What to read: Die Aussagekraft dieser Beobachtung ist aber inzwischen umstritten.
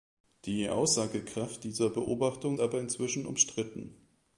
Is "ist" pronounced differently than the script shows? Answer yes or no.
yes